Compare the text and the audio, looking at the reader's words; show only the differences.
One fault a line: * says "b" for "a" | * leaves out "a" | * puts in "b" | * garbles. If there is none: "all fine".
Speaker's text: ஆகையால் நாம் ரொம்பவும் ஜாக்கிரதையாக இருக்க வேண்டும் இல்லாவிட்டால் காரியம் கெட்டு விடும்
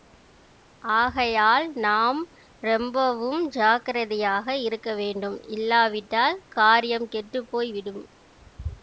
* puts in "போய்"